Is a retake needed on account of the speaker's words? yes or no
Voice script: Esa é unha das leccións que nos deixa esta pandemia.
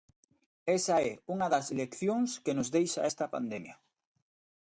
no